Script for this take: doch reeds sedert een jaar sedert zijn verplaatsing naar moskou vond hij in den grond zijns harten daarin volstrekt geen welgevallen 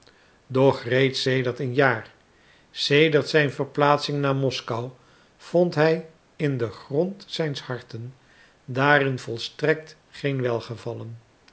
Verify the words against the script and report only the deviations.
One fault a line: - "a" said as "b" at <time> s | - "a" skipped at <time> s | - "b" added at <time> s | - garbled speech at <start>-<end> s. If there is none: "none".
none